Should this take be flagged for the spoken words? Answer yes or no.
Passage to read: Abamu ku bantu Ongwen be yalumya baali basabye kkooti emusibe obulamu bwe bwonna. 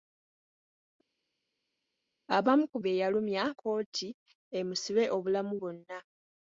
yes